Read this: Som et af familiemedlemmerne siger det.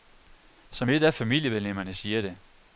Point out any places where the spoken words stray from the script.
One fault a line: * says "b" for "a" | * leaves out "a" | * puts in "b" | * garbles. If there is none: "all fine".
all fine